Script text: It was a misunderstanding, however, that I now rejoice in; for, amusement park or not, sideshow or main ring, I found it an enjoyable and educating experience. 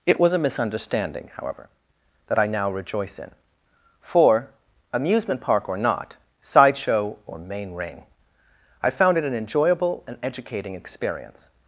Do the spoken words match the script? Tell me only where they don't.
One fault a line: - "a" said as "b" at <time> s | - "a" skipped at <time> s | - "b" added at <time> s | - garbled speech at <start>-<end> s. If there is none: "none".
none